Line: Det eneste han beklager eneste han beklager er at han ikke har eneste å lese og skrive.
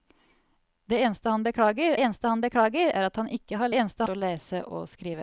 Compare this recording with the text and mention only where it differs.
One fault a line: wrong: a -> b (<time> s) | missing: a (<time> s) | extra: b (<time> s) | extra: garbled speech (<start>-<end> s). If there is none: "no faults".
no faults